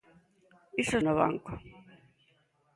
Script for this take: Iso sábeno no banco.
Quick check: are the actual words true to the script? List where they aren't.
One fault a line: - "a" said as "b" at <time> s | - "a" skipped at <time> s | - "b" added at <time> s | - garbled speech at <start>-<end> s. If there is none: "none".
- "sábeno" skipped at 1.0 s